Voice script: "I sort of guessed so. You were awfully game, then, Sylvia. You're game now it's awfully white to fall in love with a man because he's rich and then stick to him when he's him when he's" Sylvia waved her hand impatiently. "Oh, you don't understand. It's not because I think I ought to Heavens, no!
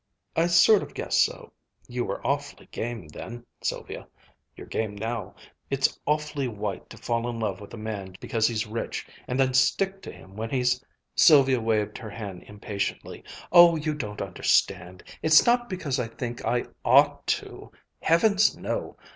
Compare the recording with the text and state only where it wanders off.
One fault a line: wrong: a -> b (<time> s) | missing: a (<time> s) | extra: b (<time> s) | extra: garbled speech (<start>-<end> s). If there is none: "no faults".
missing: him when he's (10.8 s)